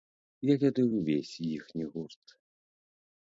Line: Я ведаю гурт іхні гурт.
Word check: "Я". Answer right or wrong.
right